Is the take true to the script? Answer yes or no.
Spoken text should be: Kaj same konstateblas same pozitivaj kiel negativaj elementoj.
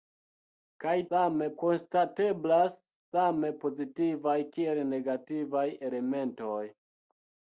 yes